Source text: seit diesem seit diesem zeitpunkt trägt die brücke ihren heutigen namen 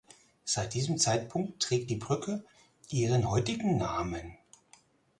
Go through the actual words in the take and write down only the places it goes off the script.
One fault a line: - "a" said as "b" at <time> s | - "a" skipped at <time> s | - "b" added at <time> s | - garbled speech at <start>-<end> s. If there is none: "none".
- "seit diesem" skipped at 1.0 s